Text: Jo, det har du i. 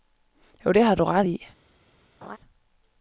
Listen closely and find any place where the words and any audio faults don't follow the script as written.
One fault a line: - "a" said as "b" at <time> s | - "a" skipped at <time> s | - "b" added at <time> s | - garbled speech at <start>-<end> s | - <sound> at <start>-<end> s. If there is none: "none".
- "ret" added at 1.0 s
- laugh at 2.2-2.4 s